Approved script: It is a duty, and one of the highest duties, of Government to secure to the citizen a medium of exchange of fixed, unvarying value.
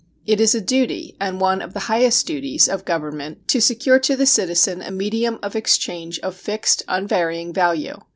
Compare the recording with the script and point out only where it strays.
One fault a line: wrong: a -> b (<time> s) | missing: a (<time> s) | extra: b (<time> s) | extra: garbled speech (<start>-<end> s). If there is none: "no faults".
no faults